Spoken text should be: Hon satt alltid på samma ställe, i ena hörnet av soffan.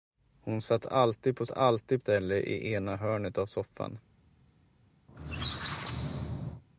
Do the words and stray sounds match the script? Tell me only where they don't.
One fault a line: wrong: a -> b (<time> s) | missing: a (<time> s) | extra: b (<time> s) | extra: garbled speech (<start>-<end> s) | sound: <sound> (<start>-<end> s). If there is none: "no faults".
wrong: samma -> alltid (1.5 s)
sound: squeak (5.1-6.6 s)